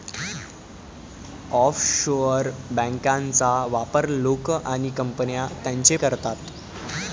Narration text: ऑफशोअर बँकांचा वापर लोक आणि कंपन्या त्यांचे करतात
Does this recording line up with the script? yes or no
yes